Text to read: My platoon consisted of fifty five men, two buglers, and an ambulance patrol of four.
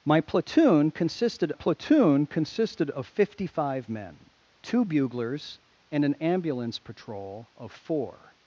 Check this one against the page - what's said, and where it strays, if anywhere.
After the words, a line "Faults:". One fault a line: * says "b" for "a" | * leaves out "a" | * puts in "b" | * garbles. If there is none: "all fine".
My platoon consisted platoon consisted of fifty five men, two buglers, and an ambulance patrol of four.
Faults:
* puts in "platoon consisted"